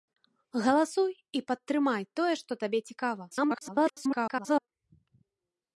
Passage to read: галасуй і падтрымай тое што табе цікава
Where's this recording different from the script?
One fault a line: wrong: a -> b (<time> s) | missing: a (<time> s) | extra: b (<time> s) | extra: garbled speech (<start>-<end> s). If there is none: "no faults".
extra: garbled speech (3.3-4.7 s)